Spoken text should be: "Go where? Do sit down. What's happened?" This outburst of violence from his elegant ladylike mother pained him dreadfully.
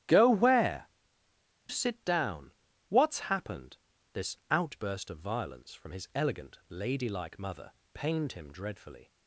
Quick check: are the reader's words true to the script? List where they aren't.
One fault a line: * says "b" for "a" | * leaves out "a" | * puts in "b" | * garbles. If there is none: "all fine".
* leaves out "Do"